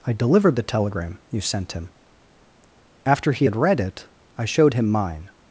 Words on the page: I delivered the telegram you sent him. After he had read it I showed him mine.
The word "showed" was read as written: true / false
true